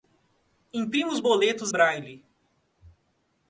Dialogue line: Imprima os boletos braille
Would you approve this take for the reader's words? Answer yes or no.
yes